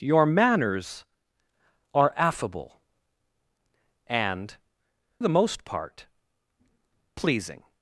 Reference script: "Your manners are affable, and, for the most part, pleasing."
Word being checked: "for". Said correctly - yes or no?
no